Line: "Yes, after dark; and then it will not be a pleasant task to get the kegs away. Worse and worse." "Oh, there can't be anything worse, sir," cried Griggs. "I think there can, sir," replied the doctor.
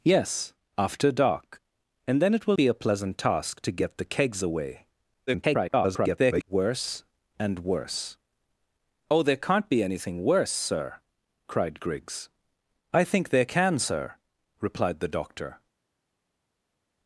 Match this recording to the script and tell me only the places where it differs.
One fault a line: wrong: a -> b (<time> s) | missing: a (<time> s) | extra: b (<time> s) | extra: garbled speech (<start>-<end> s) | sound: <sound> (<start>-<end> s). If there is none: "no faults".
missing: not (2.6 s)
extra: garbled speech (5.3-6.4 s)